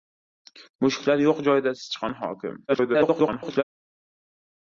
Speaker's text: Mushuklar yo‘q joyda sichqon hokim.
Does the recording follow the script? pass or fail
fail